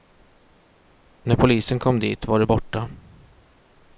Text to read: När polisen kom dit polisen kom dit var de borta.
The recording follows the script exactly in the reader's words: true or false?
false